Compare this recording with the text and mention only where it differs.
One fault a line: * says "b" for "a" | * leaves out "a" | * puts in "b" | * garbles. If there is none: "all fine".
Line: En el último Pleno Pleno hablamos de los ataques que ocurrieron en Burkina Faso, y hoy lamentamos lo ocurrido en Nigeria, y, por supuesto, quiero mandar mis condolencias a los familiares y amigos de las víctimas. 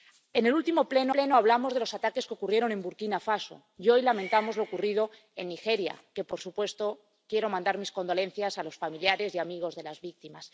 all fine